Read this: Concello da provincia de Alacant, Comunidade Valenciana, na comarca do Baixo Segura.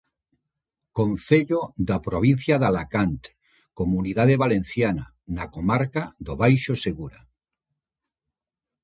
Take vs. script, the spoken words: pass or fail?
pass